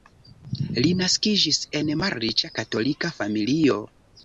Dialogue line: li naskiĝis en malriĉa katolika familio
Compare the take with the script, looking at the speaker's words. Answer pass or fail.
pass